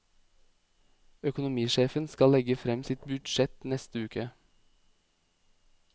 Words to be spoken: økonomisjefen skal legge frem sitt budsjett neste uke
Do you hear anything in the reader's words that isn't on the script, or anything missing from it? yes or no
no